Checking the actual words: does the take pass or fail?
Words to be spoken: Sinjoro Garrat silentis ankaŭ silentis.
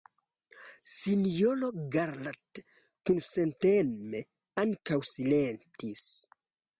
fail